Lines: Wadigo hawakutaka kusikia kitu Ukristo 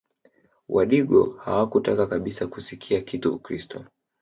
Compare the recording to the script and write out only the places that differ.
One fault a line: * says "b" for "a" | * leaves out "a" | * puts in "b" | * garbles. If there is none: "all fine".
* puts in "kabisa"